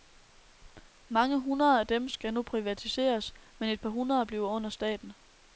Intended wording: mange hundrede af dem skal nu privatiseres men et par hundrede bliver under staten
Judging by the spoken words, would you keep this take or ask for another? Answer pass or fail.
pass